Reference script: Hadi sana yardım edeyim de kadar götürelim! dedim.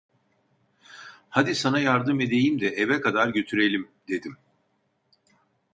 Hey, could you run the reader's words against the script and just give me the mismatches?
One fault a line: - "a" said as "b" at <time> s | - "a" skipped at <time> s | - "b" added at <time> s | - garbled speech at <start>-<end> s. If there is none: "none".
- "eve" added at 2.7 s